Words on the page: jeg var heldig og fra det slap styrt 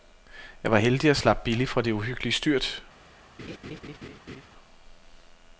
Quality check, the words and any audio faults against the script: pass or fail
fail